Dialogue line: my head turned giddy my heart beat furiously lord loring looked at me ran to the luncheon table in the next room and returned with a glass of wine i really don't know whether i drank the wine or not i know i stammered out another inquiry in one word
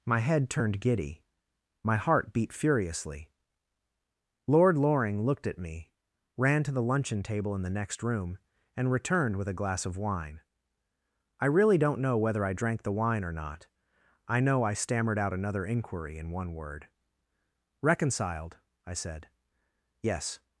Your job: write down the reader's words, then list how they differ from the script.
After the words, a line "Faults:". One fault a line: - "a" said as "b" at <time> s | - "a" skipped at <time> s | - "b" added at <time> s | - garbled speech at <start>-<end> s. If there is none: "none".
my head turned giddy my heart beat furiously lord loring looked at me ran to the luncheon table in the next room and returned with a glass of wine i really don't know whether i drank the wine or not i know i stammered out another inquiry in one word reconciled i said yes
Faults:
- "reconciled i said yes" added at 17.8 s